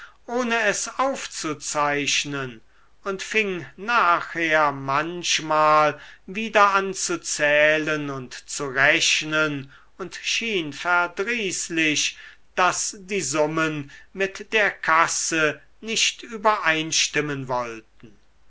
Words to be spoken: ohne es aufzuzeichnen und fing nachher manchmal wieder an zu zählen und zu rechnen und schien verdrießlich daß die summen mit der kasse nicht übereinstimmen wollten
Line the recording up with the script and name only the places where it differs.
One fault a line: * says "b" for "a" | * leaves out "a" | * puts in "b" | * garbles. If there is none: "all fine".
all fine